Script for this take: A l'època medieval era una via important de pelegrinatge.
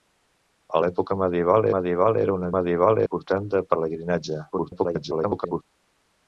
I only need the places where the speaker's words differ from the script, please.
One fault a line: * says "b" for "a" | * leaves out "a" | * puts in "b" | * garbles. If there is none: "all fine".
* puts in "medieval"
* says "medieval" for "via"
* garbles